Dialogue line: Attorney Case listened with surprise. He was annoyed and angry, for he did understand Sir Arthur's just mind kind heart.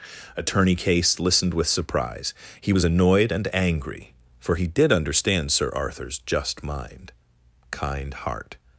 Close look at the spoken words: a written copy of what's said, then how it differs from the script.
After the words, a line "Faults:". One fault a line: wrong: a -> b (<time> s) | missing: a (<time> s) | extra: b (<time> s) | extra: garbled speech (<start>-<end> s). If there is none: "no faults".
Attorney Case listened with surprise. He was annoyed and angry, for he did understand Sir Arthur's just mind kind heart.
Faults:
no faults